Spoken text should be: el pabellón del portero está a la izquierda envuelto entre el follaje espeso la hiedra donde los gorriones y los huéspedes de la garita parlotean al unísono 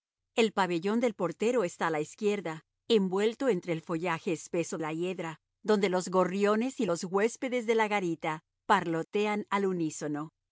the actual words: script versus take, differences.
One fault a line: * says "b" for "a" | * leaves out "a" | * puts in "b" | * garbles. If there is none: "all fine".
all fine